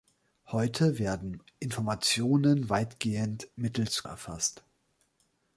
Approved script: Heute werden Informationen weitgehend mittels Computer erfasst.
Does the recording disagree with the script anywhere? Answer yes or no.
yes